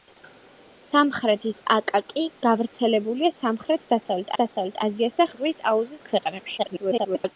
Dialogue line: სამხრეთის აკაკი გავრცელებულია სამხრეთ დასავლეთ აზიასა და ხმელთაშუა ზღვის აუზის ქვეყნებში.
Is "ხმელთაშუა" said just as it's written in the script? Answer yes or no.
no